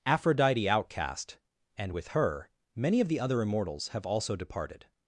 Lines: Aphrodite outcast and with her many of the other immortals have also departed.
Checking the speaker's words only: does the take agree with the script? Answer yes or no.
yes